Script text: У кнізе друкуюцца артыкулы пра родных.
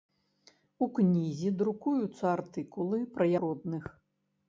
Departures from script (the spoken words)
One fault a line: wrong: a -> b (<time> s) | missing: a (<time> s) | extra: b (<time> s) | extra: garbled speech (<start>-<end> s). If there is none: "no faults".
no faults